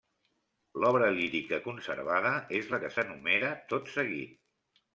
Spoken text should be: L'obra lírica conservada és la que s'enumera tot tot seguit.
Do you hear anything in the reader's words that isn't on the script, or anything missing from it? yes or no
yes